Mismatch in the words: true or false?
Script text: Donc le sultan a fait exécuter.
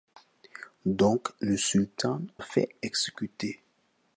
false